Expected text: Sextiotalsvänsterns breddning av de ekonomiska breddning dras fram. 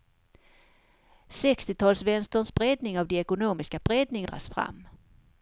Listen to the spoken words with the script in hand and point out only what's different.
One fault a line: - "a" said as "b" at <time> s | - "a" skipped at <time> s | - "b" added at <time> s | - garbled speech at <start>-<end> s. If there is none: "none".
none